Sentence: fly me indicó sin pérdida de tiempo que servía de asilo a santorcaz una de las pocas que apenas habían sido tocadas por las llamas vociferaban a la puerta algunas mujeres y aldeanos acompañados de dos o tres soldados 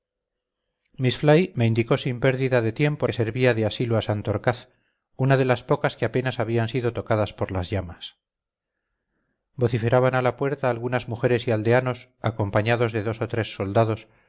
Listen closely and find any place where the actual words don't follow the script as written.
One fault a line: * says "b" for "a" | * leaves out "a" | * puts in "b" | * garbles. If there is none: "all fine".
all fine